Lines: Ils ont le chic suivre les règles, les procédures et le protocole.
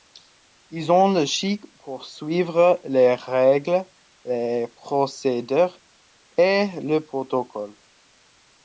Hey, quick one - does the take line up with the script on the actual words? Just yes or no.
no